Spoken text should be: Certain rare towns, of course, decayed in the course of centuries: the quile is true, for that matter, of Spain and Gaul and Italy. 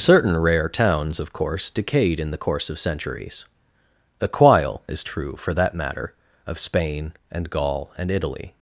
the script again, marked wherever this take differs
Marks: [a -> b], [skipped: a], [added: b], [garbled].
Certain rare towns, of course, decayed in the course of centuries: the quile is true, for that matter, of Spain and Gaul and Italy.